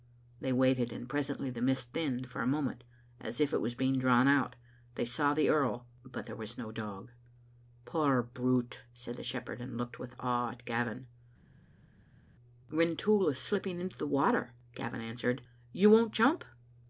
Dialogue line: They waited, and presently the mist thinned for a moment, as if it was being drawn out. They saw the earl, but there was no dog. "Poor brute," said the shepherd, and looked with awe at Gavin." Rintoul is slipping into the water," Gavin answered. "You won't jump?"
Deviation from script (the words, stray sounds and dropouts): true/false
false